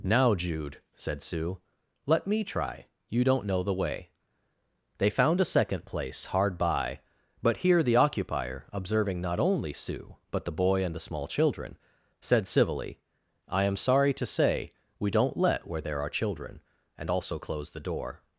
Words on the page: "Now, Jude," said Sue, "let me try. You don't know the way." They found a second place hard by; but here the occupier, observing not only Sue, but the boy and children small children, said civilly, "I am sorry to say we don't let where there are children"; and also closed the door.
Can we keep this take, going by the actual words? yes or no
no